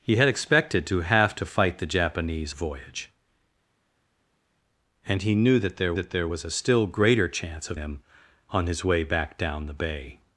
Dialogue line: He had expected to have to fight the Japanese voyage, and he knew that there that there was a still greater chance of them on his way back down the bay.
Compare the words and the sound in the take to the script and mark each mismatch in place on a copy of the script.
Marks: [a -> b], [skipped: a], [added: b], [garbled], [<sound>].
He had expected to have to fight the Japanese voyage, and he knew that there that there was a still greater chance of them on his way back down the bay.